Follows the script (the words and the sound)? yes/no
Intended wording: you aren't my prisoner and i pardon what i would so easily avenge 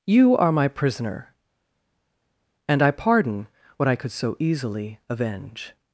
no